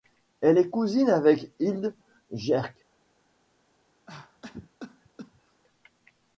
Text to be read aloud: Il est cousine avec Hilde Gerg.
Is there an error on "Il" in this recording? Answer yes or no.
yes